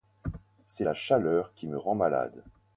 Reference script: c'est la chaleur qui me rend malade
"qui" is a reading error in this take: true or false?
false